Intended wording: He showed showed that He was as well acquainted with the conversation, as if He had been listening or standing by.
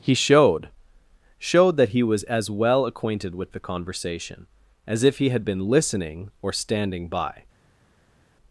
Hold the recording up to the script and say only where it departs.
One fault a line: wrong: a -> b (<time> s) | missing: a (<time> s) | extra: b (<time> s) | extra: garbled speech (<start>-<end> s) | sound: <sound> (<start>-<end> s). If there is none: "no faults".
no faults